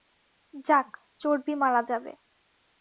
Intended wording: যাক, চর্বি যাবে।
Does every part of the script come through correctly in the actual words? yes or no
no